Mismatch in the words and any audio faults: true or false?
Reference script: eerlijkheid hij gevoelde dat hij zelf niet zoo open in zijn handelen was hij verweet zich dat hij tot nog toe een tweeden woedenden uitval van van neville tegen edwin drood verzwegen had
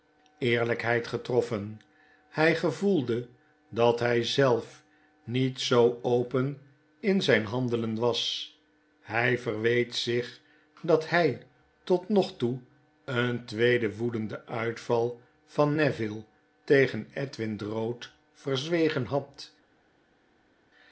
true